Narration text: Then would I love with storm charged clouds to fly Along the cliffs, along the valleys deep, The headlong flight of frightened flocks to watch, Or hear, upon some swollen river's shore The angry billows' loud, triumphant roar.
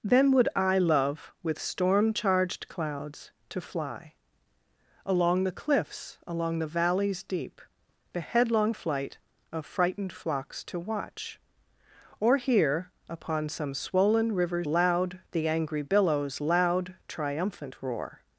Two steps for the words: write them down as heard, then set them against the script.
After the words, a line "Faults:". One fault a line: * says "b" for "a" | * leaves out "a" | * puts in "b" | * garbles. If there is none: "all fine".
Then would I love with storm charged clouds to fly Along the cliffs, along the valleys deep, The headlong flight of frightened flocks to watch, Or hear, upon some swollen river's loud The angry billows' loud, triumphant roar.
Faults:
* says "loud" for "shore"